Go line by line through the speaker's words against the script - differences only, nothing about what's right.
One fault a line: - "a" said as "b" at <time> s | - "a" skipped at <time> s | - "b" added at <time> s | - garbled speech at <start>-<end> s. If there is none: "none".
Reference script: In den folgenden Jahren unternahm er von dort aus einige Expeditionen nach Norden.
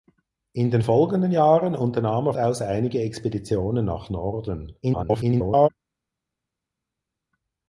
- "von dort" skipped at 2.3 s
- garbled speech at 4.8-5.7 s